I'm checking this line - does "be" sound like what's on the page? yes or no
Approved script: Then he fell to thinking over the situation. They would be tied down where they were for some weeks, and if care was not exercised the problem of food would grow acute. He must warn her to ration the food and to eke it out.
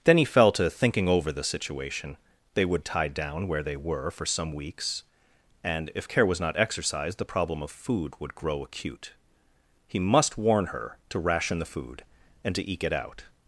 no